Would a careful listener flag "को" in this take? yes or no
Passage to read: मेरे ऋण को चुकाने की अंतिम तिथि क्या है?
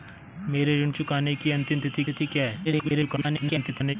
yes